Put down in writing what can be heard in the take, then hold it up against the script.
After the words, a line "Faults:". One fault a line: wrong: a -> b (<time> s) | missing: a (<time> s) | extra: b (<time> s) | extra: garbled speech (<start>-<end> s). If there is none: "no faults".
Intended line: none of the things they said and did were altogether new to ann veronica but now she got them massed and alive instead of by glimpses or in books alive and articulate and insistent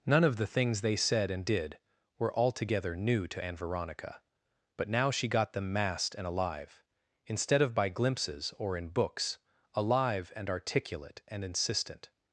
none of the things they said and did were altogether new to ann veronica but now she got them massed and alive instead of by glimpses or in books alive and articulate and insistent
Faults:
no faults